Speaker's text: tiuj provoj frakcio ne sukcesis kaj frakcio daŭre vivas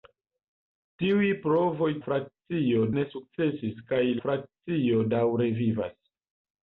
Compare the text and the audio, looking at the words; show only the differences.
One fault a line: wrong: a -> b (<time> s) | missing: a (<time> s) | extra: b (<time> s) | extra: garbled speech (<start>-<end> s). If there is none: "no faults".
no faults